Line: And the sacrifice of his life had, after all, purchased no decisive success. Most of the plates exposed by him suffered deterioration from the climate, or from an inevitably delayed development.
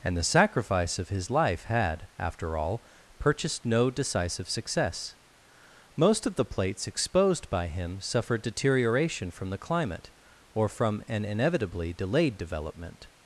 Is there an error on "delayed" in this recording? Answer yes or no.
no